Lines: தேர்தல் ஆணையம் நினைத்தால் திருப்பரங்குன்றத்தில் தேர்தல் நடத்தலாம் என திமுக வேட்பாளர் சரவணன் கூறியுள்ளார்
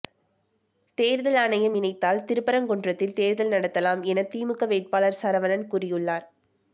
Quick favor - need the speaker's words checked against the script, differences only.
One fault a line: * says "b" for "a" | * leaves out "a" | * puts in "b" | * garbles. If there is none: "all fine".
all fine